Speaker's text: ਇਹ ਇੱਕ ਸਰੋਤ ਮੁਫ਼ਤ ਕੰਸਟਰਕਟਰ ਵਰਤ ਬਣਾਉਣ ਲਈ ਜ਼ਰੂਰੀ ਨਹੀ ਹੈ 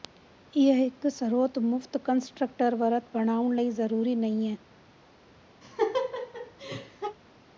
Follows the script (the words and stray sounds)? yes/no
no